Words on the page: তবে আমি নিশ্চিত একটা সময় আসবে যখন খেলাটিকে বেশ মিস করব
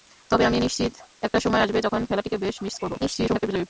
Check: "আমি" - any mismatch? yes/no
no